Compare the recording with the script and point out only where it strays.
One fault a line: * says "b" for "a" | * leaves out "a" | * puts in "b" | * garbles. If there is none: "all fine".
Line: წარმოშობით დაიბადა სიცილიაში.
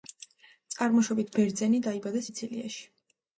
* puts in "ბერძენი"